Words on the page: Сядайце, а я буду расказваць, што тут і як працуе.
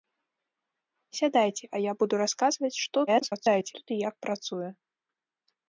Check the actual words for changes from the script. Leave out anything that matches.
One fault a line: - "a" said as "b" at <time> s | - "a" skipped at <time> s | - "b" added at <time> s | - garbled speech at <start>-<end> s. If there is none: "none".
- garbled speech at 3.1-3.7 s